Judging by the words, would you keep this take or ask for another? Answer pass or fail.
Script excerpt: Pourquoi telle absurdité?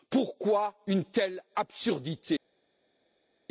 fail